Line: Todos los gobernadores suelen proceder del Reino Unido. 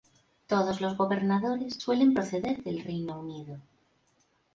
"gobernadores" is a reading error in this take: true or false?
false